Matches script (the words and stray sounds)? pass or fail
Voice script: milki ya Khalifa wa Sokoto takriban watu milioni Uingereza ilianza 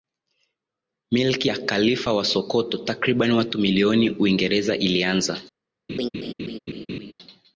fail